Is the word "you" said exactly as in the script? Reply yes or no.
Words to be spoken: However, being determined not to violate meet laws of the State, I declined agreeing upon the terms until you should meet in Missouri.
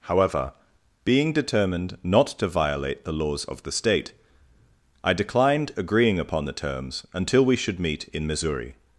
no